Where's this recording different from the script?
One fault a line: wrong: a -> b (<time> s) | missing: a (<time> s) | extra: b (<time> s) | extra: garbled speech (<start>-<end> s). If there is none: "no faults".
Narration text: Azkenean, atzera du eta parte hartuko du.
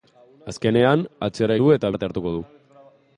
no faults